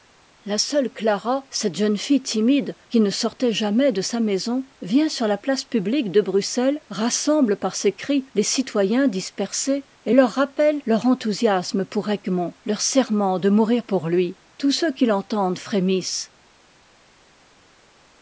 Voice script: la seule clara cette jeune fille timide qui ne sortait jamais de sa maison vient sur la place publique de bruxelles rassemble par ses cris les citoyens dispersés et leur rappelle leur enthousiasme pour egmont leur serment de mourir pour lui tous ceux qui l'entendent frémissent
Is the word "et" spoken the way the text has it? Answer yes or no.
yes